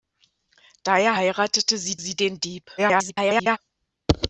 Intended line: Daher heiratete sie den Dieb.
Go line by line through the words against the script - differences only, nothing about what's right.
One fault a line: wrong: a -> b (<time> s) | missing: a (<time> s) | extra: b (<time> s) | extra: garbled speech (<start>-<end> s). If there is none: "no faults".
extra: sie (1.9 s)
extra: garbled speech (2.8-3.6 s)